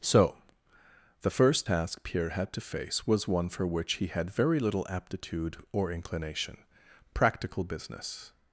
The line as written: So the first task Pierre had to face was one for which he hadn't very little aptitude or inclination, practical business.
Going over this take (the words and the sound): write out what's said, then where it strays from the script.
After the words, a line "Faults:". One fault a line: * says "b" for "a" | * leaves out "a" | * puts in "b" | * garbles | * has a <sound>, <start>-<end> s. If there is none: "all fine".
So the first task Pierre had to face was one for which he had very little aptitude or inclination, practical business.
Faults:
* says "had" for "hadn't"